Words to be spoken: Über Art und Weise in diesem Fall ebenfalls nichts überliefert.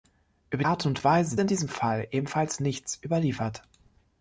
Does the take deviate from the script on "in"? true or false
false